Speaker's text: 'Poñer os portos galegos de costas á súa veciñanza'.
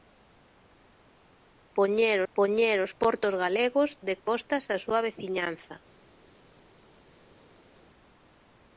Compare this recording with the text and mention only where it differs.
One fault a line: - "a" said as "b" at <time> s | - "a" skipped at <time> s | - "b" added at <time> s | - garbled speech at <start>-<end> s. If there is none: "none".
- "poñer" added at 2.3 s